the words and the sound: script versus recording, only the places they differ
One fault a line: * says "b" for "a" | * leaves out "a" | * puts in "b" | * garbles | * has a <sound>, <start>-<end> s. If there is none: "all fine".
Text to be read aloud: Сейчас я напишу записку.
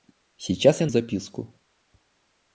* leaves out "напишу"